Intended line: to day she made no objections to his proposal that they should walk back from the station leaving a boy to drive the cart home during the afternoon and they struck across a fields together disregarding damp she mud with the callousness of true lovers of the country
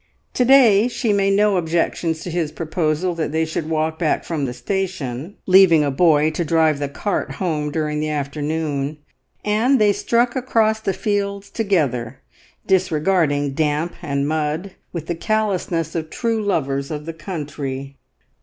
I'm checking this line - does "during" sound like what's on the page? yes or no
yes